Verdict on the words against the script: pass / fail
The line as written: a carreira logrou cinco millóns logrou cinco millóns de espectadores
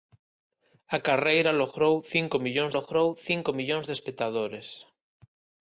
pass